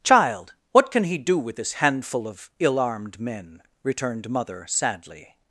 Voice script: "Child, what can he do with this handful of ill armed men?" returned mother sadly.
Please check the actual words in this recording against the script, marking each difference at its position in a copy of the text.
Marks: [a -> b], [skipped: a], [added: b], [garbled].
"Child, what can he do with this handful of ill armed men?" returned mother sadly.